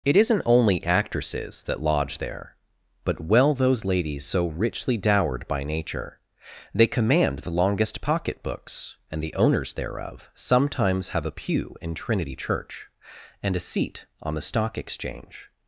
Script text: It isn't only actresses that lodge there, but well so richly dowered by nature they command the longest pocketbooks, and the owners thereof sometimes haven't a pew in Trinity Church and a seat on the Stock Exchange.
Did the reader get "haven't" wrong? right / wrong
wrong